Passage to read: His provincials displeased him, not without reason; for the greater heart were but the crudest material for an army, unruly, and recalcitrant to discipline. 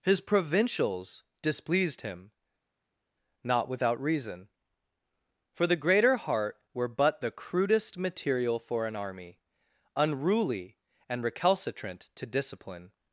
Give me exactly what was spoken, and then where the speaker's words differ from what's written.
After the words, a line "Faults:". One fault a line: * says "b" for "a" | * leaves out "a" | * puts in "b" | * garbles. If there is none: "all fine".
His provincials displeased him, not without reason; for the greater heart were but the crudest material for an army, unruly, and recalcitrant to discipline.
Faults:
all fine